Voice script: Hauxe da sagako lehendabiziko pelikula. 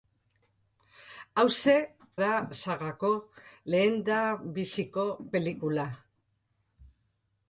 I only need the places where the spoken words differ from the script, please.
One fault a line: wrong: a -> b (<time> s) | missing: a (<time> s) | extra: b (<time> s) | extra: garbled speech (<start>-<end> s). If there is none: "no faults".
no faults